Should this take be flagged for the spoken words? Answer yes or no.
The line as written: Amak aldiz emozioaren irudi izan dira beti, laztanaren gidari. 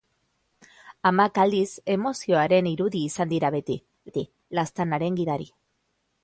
yes